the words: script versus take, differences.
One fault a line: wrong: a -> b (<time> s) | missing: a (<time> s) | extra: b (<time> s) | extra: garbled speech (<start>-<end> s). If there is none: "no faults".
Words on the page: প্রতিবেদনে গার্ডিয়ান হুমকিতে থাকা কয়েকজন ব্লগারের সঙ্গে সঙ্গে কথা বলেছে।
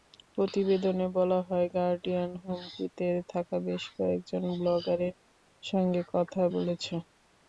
extra: বলা হয় (1.2 s)
extra: বেশ (3.7 s)
missing: সঙ্গে (6.0 s)